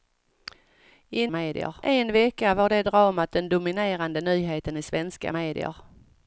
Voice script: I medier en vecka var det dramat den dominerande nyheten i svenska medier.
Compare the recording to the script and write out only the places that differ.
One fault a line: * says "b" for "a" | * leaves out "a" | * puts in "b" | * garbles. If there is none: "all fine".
all fine